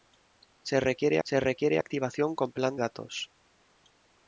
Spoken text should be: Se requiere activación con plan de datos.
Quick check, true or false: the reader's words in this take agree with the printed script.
false